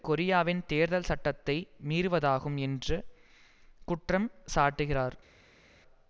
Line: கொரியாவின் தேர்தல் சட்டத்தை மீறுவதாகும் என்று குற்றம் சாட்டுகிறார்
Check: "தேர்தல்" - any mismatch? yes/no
no